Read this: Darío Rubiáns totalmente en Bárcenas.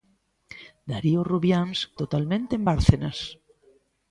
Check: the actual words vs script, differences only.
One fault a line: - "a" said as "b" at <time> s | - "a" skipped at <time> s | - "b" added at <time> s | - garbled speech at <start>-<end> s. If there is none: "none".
none